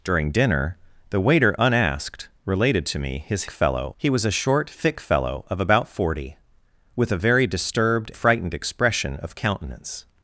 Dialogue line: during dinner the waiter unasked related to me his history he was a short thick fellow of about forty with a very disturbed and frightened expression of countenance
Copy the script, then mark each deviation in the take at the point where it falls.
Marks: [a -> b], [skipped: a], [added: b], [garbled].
during dinner the waiter unasked related to me his [history -> fellow] he was a short thick fellow of about forty with a very disturbed [skipped: and] frightened expression of countenance